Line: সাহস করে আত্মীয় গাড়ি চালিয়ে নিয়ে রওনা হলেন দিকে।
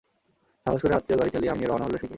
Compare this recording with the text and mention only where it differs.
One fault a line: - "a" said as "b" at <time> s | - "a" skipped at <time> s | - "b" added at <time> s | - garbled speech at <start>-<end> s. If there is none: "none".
none